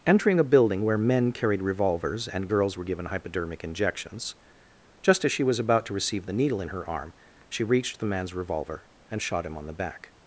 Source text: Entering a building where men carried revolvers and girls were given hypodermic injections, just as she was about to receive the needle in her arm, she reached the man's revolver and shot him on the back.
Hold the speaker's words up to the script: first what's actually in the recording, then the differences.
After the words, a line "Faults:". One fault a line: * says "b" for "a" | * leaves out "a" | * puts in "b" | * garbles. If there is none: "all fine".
Entering a building where men carried revolvers and girls were given hypodermic injections, just as she was about to receive the needle in her arm, she reached the man's revolver and shot him on the back.
Faults:
all fine